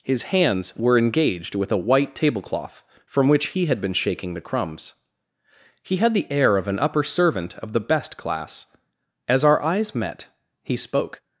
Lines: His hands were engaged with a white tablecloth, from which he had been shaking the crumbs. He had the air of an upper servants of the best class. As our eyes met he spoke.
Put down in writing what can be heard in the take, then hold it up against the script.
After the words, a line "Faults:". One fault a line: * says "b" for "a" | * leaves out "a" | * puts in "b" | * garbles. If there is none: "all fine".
His hands were engaged with a white tablecloth, from which he had been shaking the crumbs. He had the air of an upper servant of the best class. As our eyes met he spoke.
Faults:
* says "servant" for "servants"